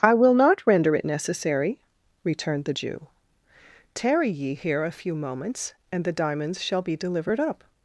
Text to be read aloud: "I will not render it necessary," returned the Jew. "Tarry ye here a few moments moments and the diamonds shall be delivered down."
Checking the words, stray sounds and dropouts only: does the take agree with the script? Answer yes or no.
no